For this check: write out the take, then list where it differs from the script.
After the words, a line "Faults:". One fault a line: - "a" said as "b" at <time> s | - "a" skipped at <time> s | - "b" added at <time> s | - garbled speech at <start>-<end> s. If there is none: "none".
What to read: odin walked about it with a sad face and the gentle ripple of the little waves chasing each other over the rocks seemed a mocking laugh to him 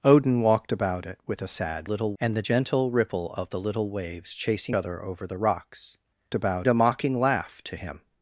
odin walked about it with a sad little and the gentle ripple of the little waves chasing other over the rocks about a mocking laugh to him
Faults:
- "face" said as "little" at 1.8 s
- "each" skipped at 4.8 s
- "seemed" said as "about" at 6.3 s